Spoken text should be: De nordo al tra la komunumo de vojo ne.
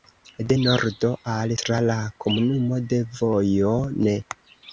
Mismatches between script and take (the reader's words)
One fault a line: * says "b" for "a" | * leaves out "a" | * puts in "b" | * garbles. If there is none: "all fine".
all fine